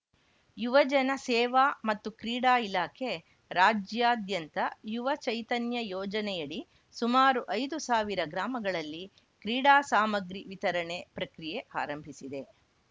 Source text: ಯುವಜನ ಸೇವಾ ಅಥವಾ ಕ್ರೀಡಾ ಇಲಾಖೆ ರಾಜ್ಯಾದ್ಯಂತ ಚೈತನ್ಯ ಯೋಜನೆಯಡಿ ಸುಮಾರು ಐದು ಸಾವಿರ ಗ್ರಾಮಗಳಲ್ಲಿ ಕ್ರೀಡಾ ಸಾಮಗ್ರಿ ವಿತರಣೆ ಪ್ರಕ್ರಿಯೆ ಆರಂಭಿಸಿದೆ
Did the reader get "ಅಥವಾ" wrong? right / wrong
wrong